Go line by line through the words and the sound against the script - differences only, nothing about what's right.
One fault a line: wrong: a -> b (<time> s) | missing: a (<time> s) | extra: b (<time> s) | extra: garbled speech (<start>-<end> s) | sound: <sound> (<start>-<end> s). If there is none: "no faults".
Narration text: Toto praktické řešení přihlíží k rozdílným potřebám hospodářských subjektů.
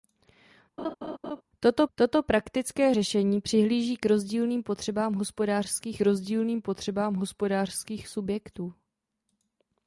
sound: laugh (0.8-1.4 s)
extra: toto (1.9 s)
extra: rozdílným potřebám hospodářských (6.0 s)